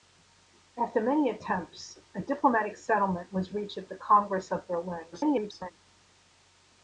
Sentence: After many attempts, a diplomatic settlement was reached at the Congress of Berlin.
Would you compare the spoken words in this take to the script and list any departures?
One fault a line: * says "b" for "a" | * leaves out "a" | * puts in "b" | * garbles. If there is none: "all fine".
* garbles